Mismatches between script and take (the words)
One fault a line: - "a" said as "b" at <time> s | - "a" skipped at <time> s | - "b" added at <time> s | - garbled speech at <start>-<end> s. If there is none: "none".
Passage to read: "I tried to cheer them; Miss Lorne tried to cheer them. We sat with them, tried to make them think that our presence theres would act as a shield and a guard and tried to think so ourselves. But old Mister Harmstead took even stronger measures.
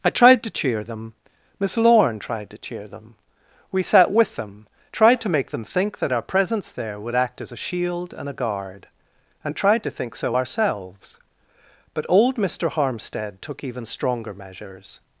- "theres" said as "there" at 6.7 s